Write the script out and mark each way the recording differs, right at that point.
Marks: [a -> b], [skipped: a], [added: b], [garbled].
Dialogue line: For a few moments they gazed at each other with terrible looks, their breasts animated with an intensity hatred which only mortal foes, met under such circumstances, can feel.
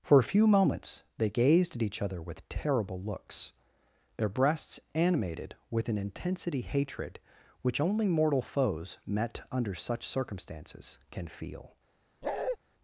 For a few moments they gazed at each other with terrible looks, their breasts animated with an intensity hatred which only mortal foes, met under such circumstances, can feel.